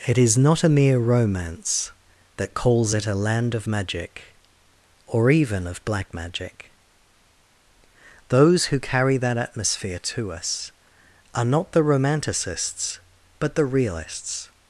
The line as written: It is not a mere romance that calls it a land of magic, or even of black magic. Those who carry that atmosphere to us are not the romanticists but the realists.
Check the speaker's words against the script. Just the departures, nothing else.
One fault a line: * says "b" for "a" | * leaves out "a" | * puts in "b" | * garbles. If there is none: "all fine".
all fine